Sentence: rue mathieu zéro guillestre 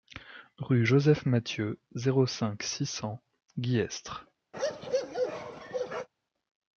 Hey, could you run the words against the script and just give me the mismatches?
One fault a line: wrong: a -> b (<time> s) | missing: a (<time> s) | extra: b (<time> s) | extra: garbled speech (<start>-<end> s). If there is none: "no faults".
extra: joseph (0.8 s)
extra: cinq six cents (2.2 s)